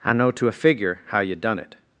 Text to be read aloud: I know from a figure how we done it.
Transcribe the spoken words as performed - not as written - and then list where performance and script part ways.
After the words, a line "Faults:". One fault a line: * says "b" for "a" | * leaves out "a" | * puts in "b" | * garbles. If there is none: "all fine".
I know to a figure how you done it.
Faults:
* says "to" for "from"
* says "you" for "we"